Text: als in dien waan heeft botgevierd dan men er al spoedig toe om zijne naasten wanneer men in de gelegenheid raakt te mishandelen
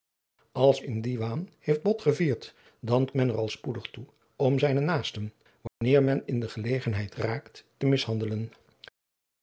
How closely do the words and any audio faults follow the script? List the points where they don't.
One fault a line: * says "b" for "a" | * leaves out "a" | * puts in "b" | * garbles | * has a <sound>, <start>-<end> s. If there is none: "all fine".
* has a dropout, 5.7-5.8 s